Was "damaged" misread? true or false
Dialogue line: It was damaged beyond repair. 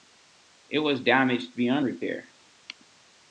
false